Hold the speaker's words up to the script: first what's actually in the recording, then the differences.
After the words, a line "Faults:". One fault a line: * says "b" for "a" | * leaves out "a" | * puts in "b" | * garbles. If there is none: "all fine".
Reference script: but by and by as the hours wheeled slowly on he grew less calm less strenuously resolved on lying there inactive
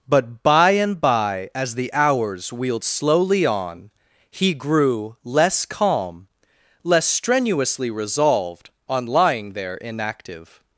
but by and by as the hours wheeled slowly on he grew less calm less strenuously resolved on lying there inactive
Faults:
all fine